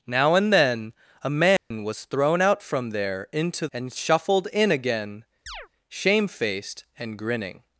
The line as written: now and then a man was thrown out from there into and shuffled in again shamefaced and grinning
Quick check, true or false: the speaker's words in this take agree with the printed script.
true